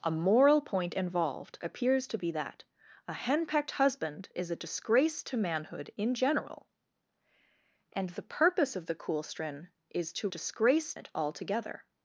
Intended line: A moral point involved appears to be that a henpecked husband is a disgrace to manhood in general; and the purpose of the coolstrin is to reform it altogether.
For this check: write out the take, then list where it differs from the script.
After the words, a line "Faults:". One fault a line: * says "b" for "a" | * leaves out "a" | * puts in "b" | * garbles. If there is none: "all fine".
A moral point involved appears to be that a henpecked husband is a disgrace to manhood in general; and the purpose of the coolstrin is to disgrace it altogether.
Faults:
* says "disgrace" for "reform"